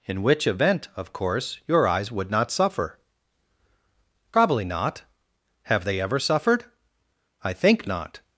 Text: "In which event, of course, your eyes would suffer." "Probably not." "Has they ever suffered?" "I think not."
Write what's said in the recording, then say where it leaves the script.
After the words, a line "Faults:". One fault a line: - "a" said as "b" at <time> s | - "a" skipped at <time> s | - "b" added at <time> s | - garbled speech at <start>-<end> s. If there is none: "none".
"In which event, of course, your eyes would not suffer." "Probably not." "Have they ever suffered?" "I think not."
Faults:
- "not" added at 2.3 s
- "Has" said as "Have" at 5.6 s